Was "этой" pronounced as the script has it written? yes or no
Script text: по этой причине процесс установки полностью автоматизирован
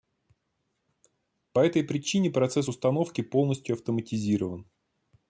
yes